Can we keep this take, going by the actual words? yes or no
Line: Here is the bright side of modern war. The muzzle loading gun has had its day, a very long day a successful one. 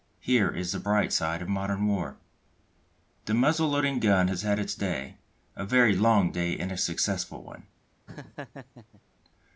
no